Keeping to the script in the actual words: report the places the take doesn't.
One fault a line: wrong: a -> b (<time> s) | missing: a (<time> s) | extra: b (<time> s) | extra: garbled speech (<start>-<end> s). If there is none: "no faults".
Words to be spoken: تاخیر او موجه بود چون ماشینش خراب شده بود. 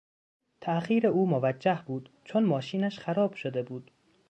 no faults